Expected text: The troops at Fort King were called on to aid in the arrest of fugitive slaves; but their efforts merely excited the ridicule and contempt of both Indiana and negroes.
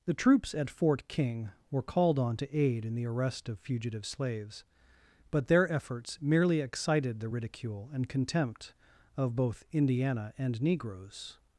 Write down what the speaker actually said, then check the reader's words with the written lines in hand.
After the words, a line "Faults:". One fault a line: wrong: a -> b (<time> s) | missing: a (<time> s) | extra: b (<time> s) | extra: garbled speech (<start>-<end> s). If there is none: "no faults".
The troops at Fort King were called on to aid in the arrest of fugitive slaves; but their efforts merely excited the ridicule and contempt of both Indiana and negroes.
Faults:
no faults